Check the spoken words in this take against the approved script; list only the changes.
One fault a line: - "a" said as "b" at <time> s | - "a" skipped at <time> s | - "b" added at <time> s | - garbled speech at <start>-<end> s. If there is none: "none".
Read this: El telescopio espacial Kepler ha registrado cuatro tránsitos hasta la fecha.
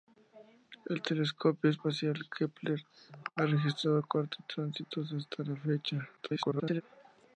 - garbled speech at 6.2-6.8 s